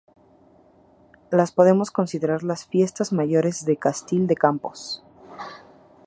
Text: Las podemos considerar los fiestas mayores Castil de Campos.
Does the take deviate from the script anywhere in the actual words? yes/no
yes